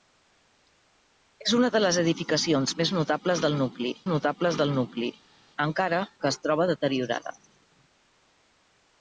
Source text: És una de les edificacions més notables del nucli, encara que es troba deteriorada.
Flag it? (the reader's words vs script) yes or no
yes